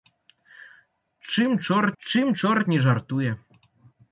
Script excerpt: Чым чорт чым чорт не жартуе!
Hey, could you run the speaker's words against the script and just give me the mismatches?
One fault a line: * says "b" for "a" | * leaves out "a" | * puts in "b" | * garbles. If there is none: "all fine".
all fine